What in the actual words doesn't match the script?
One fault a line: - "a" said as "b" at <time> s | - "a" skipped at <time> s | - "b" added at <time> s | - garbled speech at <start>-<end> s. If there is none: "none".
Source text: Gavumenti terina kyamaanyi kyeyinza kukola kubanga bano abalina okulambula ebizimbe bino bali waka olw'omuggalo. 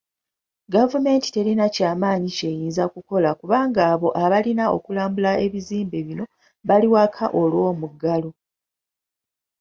- "bano" said as "abo" at 3.9 s